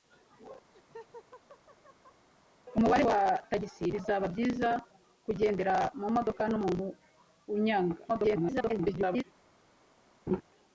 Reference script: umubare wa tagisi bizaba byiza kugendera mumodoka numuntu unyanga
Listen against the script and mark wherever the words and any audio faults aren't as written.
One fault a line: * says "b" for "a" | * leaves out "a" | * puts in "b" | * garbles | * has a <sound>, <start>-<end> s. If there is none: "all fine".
* has a laugh, 0.7-2.3 s
* garbles
* has a laugh, 10.3-10.4 s